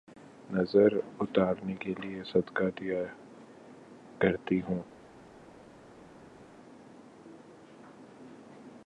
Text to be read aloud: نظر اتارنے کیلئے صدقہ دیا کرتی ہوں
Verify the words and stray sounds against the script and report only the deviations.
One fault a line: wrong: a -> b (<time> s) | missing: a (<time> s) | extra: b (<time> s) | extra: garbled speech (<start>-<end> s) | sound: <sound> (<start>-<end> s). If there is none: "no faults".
no faults